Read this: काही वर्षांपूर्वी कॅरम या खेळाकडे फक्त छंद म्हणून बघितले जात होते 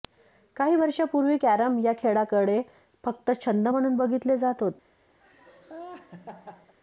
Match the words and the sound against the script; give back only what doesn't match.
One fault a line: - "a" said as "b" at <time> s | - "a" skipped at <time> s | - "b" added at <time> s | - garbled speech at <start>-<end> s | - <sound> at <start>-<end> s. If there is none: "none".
- laugh at 5.2-6.7 s